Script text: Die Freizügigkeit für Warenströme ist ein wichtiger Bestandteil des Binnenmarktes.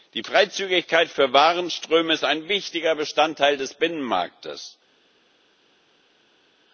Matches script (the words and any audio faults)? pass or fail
pass